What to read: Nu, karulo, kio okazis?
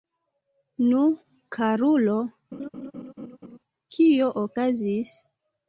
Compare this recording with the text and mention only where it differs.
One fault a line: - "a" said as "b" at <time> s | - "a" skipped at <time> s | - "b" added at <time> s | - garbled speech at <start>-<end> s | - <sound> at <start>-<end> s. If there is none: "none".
- laugh at 2.5-3.6 s